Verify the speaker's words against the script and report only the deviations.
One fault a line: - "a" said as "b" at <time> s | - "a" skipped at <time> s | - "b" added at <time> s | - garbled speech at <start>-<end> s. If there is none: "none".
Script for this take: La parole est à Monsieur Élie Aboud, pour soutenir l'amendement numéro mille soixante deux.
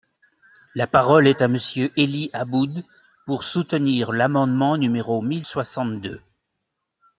none